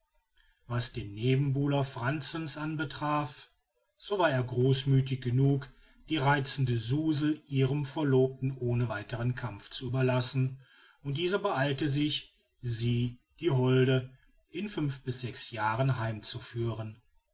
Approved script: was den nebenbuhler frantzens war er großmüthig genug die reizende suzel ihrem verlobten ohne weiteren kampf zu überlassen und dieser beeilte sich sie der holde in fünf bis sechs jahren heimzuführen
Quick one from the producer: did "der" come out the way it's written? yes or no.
no